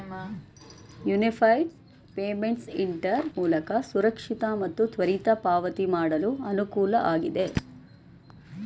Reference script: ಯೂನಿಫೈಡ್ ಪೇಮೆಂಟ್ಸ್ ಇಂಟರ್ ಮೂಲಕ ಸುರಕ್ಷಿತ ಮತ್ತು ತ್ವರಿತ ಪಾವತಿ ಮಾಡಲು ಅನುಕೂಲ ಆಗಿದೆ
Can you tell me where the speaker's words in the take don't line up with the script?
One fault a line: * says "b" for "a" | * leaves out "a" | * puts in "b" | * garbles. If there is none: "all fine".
all fine